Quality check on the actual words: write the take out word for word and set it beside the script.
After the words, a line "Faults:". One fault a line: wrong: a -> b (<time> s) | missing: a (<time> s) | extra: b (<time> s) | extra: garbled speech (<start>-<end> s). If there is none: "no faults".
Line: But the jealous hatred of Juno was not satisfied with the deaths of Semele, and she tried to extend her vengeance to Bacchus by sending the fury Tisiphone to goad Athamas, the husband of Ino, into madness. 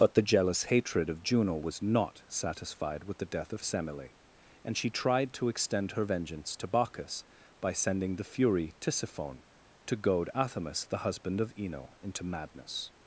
But the jealous hatred of Juno was not satisfied with the death of Semele, and she tried to extend her vengeance to Bacchus by sending the fury Tisiphone to goad Athamas, the husband of Ino, into madness.
Faults:
wrong: deaths -> death (3.2 s)